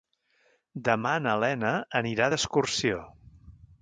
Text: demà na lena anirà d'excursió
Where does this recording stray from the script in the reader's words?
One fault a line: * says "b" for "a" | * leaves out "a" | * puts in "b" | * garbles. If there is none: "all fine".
all fine